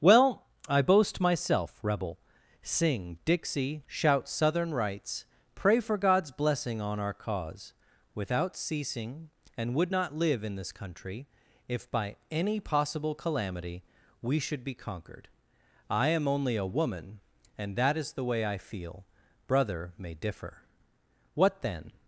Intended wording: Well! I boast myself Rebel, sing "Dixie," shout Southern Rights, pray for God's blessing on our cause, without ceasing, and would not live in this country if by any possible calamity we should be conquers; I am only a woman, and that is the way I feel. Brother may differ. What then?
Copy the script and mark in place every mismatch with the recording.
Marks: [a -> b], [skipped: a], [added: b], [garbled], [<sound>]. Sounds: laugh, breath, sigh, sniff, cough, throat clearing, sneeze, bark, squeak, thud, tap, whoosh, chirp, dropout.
Well! I boast myself Rebel, sing "Dixie," shout Southern Rights, pray for God's blessing on our cause, without ceasing, and would not live in this country if by any possible calamity we should be [conquers; -> conquered] I am only a woman, and that is the way I feel. Brother may differ. What then?